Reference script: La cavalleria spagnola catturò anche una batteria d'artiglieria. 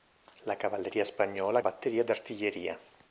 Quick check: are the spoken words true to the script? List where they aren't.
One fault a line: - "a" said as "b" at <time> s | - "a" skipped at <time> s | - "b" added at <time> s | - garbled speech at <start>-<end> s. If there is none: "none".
- "catturò anche una" skipped at 1.6 s